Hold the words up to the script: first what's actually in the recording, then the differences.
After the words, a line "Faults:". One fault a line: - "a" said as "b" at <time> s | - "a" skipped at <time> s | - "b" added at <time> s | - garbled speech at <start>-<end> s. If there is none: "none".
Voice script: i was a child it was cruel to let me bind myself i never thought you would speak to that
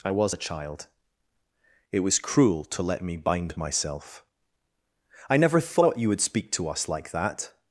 i was a child it was cruel to let me bind myself i never thought you would speak to us like that
Faults:
- "us like" added at 6.7 s